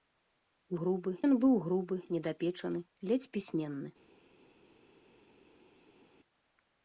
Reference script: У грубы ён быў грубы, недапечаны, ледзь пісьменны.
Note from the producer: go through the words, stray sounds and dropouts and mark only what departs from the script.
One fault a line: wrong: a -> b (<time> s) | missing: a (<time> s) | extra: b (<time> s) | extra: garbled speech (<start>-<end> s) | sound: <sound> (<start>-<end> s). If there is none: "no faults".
no faults